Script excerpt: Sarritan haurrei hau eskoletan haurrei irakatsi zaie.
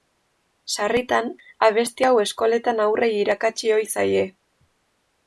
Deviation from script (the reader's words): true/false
true